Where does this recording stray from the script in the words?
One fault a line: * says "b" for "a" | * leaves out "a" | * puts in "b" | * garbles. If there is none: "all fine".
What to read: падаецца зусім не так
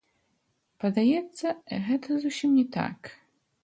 * puts in "гэта"